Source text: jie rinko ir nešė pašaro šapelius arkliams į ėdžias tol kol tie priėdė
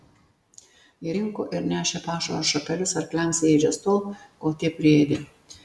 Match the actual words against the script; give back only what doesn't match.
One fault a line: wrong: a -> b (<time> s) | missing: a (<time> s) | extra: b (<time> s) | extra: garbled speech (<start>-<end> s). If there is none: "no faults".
no faults